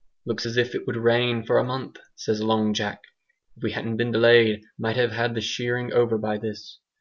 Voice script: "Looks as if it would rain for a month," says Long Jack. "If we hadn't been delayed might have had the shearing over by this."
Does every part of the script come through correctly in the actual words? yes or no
yes